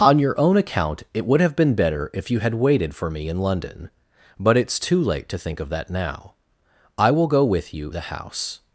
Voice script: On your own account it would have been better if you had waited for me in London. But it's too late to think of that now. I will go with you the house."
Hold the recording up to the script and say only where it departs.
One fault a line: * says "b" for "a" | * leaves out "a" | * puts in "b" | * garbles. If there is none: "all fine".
all fine